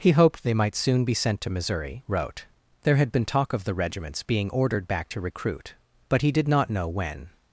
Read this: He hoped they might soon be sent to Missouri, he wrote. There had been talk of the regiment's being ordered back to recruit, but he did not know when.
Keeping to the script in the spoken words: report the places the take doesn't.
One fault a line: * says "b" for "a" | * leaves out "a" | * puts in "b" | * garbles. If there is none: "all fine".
* leaves out "he"